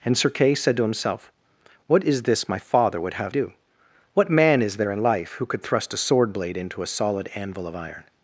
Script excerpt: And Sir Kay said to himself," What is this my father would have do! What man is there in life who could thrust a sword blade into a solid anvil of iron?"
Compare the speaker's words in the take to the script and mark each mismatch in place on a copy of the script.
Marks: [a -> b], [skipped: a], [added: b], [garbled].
And Sir Kay said to himself," What is this my father would have do! What man is there in life who could thrust a sword blade into a solid anvil of iron?"